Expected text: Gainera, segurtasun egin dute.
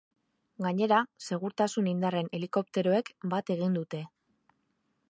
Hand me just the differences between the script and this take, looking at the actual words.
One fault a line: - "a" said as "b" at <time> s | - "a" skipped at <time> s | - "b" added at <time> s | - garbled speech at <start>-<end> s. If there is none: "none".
- "indarren helikopteroek bat" added at 1.9 s